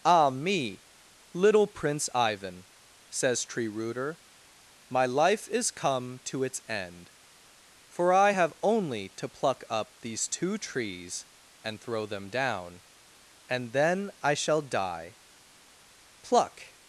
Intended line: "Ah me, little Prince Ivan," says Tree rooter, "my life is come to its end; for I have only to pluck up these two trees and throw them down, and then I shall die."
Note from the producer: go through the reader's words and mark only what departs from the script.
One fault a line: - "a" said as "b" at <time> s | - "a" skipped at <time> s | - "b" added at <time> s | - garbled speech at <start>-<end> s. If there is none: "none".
- "Pluck" added at 16.2 s